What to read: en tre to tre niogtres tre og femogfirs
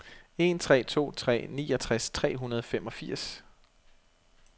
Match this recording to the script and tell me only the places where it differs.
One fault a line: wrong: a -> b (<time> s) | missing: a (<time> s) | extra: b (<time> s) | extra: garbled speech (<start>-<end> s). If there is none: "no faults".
extra: hundrede (2.4 s)